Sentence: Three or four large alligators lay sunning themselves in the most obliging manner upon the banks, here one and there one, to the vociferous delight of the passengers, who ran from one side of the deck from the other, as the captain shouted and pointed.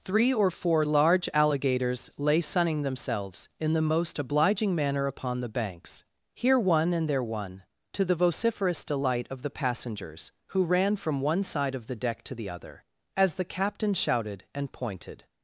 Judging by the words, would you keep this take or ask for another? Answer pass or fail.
fail